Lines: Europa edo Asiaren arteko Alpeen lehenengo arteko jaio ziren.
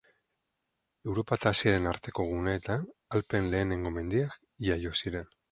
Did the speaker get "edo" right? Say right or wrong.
wrong